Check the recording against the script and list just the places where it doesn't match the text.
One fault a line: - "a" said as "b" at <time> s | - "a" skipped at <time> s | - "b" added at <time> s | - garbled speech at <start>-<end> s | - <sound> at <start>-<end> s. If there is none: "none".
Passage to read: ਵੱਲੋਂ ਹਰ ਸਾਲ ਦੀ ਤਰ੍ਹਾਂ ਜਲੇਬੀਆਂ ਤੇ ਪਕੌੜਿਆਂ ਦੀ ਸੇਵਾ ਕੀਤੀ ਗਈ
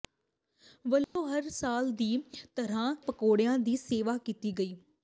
- dropout at 1.0-1.2 s
- "ਜਲੇਬੀਆਂ ਤੇ" skipped at 2.9 s